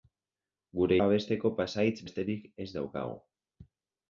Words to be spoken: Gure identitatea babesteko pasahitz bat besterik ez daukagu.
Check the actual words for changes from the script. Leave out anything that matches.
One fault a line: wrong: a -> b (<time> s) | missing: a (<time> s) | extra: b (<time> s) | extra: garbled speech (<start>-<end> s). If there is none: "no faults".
missing: identitatea (1.0 s)
missing: bat (2.0 s)